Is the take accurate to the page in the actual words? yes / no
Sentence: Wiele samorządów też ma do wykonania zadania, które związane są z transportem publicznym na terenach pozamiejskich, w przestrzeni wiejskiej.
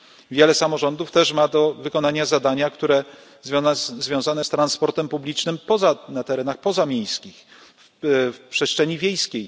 no